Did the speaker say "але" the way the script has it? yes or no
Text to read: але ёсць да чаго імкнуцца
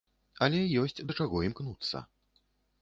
yes